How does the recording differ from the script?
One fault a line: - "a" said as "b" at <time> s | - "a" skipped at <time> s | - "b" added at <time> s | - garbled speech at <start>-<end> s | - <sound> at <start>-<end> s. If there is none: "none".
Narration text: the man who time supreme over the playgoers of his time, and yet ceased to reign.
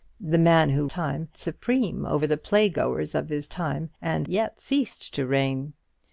none